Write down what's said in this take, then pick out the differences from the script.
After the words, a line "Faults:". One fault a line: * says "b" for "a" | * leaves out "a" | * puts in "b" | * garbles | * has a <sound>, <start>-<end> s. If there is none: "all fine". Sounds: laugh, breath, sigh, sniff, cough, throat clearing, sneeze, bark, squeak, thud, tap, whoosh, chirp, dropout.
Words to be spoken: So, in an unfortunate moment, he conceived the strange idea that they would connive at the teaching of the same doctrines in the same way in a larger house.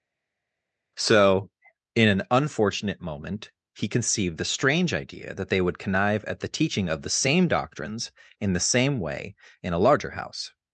So, in an unfortunate moment, he conceived the strange idea that they would connive at the teaching of the same doctrines in the same way in a larger house.
Faults:
all fine